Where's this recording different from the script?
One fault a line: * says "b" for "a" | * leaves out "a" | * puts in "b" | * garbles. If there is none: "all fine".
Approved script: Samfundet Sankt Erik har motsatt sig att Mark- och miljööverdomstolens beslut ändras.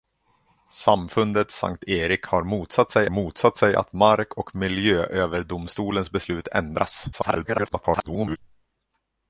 * puts in "motsatt sig"
* garbles